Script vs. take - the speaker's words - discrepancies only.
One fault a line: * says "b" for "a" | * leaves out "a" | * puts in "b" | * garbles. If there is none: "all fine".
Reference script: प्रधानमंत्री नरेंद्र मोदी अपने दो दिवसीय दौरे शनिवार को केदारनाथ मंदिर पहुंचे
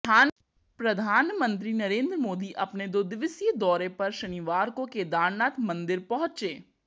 * puts in "पर"